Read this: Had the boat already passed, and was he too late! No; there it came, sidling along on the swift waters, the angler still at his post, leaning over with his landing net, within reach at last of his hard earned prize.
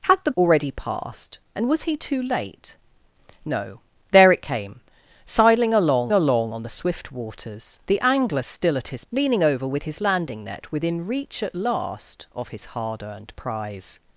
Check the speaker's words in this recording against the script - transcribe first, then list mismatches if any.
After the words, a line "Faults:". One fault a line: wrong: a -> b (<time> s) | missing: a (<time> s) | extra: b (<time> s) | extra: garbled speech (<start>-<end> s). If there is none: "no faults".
Had the already passed, and was he too late! No; there it came, sidling along along on the swift waters, the angler still at his leaning over with his landing net, within reach at last of his hard earned prize.
Faults:
missing: boat (0.3 s)
extra: along (6.1 s)
missing: post (9.0 s)